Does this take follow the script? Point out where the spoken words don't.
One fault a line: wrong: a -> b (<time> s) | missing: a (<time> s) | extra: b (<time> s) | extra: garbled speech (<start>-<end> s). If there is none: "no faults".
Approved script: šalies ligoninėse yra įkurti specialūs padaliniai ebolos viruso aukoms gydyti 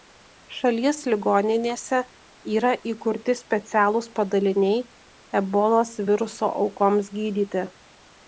no faults